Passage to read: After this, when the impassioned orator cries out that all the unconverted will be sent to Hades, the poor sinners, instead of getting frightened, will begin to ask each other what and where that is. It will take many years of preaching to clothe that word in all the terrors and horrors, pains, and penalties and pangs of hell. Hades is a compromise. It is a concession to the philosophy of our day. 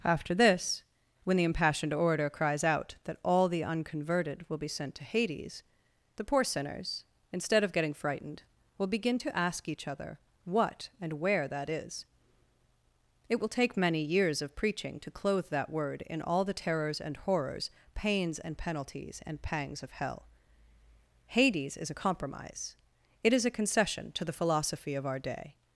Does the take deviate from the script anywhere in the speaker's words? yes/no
no